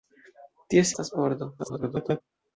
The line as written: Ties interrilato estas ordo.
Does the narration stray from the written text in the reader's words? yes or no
yes